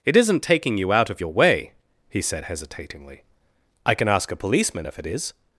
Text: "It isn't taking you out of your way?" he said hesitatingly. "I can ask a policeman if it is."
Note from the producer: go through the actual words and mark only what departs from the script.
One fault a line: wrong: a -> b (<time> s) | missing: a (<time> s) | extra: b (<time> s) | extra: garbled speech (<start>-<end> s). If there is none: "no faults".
no faults